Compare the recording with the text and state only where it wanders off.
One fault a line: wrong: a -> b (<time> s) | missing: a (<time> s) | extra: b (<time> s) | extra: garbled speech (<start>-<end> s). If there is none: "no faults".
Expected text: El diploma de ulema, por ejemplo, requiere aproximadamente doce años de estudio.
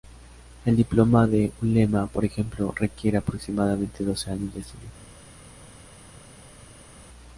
no faults